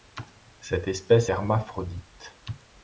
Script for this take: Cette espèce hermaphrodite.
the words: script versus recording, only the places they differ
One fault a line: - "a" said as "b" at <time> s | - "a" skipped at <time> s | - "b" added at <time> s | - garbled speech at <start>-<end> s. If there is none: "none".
none